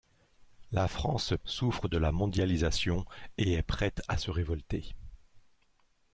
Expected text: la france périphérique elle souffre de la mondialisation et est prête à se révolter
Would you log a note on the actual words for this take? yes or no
yes